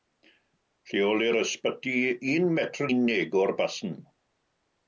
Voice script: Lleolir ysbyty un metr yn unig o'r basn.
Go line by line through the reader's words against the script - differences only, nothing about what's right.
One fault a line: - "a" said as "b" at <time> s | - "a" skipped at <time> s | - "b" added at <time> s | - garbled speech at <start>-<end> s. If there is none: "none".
- "yn" skipped at 2.9 s